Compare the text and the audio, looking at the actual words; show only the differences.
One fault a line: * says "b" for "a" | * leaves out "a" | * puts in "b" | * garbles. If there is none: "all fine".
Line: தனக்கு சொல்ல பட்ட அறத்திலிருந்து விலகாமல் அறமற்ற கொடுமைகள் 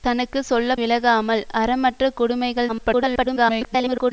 * leaves out "பட்ட அறத்திலிருந்து"
* garbles